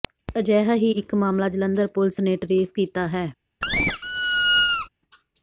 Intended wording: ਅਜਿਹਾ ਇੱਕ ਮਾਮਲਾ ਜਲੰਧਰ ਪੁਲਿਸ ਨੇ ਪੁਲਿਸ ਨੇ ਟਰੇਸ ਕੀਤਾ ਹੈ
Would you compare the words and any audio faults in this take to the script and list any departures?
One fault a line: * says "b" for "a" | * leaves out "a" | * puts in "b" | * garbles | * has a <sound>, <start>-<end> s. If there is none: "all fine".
* puts in "ਹੀ"
* leaves out "ਪੁਲਿਸ ਨੇ"
* has a squeak, 3.6-4.9 s